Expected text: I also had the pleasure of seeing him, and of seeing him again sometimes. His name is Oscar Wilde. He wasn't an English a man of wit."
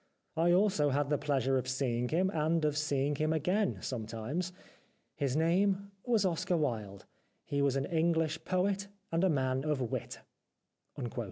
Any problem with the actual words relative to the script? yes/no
yes